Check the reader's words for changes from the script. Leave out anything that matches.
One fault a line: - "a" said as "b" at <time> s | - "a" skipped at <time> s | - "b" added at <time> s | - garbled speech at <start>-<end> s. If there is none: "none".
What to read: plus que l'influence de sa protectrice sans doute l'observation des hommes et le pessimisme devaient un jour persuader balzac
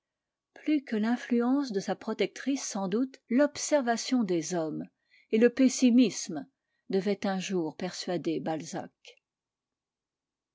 none